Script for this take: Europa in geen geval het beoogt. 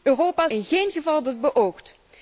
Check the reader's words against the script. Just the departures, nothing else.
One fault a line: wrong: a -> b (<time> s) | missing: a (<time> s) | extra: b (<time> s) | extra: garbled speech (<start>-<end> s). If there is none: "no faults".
no faults